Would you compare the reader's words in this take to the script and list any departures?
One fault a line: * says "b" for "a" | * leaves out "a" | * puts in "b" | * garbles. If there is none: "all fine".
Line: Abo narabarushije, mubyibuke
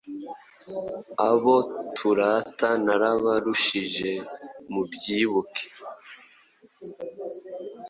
* puts in "turata"